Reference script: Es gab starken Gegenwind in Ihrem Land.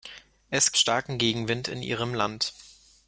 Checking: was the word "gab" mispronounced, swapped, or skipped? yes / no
yes